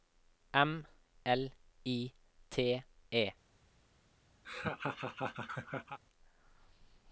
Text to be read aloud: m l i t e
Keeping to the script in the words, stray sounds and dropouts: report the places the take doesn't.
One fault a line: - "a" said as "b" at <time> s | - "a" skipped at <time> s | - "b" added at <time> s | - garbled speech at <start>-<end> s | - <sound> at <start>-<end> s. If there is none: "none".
- laugh at 4.4-6.0 s